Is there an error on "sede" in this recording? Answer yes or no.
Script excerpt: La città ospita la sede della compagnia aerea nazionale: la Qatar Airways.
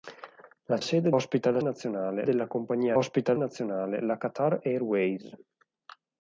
yes